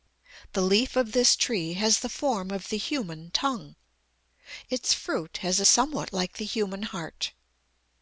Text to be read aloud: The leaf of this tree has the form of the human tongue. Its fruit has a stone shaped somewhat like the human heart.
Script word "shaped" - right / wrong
wrong